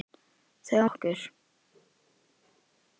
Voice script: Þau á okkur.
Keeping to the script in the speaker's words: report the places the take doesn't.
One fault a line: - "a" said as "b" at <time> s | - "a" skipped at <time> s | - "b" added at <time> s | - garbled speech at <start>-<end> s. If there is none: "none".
none